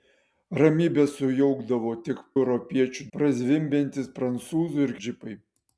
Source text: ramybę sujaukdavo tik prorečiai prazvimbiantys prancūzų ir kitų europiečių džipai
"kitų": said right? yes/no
no